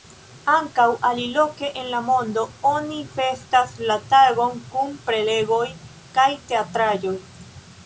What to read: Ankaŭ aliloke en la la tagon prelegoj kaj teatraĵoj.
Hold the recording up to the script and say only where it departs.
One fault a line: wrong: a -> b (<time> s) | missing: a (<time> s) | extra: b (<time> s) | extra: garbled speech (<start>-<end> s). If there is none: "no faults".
extra: mondo oni festas (2.1 s)
extra: kun (4.8 s)